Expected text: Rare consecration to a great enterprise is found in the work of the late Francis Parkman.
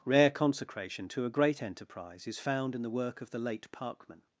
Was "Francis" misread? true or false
true